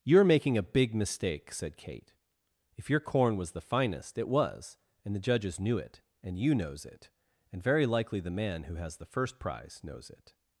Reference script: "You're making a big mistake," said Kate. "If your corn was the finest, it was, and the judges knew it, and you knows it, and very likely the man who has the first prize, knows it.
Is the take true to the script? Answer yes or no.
yes